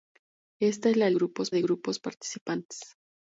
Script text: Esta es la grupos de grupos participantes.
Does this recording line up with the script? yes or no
yes